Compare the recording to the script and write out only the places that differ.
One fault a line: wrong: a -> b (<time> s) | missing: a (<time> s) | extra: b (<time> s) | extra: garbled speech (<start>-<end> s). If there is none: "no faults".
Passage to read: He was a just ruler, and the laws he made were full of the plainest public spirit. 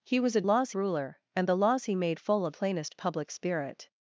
wrong: just -> laws (0.4 s)
missing: were (2.2 s)
missing: the (2.5 s)